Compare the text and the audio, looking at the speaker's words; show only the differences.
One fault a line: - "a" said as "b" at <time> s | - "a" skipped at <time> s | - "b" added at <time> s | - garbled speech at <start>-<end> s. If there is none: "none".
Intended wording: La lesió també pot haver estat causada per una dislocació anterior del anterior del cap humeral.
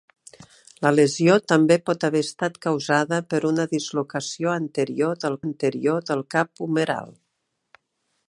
none